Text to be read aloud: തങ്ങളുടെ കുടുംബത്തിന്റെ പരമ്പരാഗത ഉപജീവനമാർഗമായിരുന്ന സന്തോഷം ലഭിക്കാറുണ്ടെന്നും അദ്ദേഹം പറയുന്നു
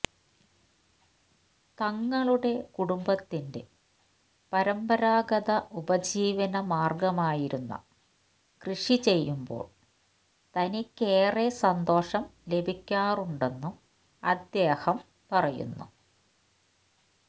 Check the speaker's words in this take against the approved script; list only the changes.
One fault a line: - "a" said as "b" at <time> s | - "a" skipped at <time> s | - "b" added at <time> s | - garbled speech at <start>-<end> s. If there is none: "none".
- "കൃഷി ചെയ്യുമ്പോൾ തനിക്കേറെ" added at 8.6 s